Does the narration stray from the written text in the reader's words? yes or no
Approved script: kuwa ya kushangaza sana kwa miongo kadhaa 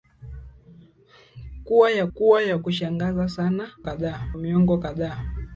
yes